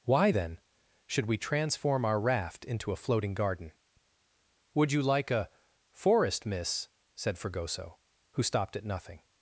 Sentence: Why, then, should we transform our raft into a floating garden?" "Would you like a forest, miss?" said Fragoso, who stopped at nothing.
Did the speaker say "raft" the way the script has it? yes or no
yes